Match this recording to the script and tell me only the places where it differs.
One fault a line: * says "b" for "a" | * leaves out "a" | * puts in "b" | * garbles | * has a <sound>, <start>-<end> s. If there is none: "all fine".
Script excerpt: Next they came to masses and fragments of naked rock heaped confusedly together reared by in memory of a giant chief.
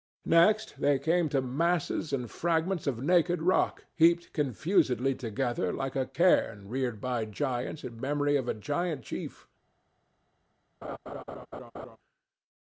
* puts in "like a cairn"
* puts in "giants"
* has a laugh, 10.8-12.0 s